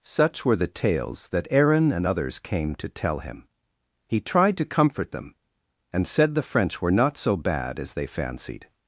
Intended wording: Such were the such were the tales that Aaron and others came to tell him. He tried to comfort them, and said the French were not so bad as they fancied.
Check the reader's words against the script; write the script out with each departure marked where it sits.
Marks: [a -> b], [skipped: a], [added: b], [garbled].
Such were the [skipped: such were the] tales that Aaron and others came to tell him. He tried to comfort them, and said the French were not so bad as they fancied.